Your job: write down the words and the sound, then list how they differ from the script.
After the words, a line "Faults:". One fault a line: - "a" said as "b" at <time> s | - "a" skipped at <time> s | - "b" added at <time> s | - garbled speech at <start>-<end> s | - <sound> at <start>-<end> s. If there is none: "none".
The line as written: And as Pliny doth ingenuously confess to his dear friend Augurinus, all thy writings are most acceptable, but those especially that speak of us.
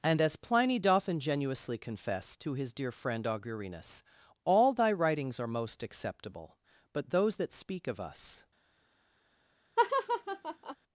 And as Pliny doth ingenuously confess to his dear friend Augurinus, all thy writings are most acceptable, but those that speak of us.
Faults:
- "especially" skipped at 7.4 s
- laugh at 9.8-10.8 s